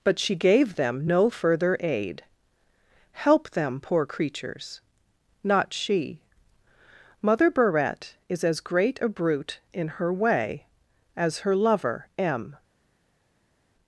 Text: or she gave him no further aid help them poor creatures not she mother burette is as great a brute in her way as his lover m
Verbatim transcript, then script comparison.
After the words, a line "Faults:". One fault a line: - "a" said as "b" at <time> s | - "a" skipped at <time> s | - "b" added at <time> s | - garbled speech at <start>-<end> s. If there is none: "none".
but she gave them no further aid help them poor creatures not she mother burette is as great a brute in her way as her lover m
Faults:
- "or" said as "but" at 0.0 s
- "him" said as "them" at 0.8 s
- "his" said as "her" at 11.4 s